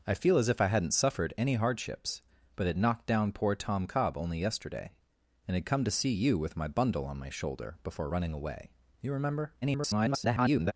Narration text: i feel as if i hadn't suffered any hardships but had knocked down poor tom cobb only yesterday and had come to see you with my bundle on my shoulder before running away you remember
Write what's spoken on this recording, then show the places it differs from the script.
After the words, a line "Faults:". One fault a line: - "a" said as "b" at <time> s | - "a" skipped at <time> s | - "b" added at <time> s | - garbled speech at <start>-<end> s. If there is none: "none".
i feel as if i hadn't suffered any hardships but had knocked down poor tom cobb only yesterday and had come to see you with my bundle on my shoulder before running away you remember [garbled]
Faults:
- garbled speech at 9.6-10.7 s